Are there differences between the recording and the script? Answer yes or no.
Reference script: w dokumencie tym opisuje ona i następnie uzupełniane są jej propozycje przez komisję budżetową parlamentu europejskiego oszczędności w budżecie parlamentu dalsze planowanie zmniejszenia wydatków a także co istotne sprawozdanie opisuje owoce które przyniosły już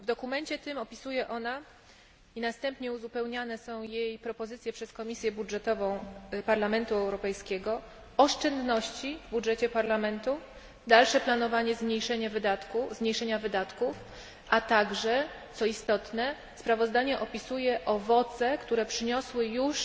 no